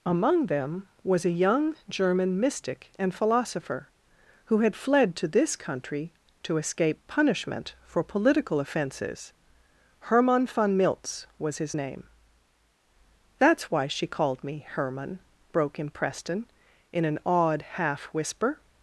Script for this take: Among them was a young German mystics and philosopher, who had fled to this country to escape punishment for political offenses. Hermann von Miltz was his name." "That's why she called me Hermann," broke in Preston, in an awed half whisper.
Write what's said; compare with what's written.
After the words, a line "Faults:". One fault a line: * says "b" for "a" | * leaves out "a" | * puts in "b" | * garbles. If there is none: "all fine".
Among them was a young German mystic and philosopher, who had fled to this country to escape punishment for political offenses. Hermann von Miltz was his name." "That's why she called me Hermann," broke in Preston, in an awed half whisper.
Faults:
* says "mystic" for "mystics"